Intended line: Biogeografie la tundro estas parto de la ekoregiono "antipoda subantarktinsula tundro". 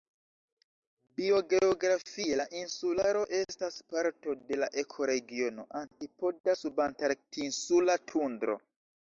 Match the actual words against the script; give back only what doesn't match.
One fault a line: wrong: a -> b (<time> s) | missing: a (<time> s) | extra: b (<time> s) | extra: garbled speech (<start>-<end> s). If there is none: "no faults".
wrong: tundro -> insularo (2.6 s)